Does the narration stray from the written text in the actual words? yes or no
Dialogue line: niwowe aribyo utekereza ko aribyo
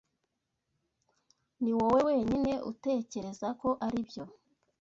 yes